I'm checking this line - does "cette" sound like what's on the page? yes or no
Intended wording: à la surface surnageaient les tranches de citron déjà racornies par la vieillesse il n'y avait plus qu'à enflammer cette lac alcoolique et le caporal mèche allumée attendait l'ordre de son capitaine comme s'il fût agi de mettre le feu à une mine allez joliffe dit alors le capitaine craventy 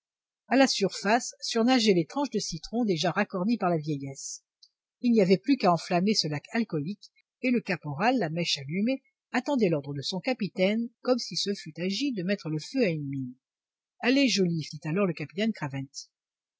no